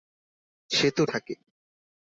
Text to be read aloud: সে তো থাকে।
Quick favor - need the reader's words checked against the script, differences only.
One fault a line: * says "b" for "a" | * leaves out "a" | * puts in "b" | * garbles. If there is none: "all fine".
all fine